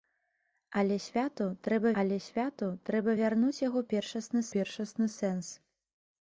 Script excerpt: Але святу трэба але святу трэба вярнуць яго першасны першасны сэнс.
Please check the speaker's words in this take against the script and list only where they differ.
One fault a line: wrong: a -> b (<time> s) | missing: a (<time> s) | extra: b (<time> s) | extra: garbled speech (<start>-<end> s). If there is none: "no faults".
no faults